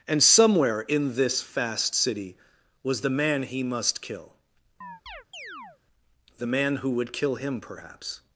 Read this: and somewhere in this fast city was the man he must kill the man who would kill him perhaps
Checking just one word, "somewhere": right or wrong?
right